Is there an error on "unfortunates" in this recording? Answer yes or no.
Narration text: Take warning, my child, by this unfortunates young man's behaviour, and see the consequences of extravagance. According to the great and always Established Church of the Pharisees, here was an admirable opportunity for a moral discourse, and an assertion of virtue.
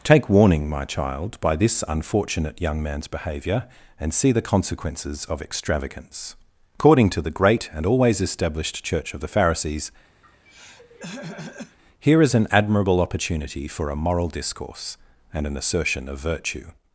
yes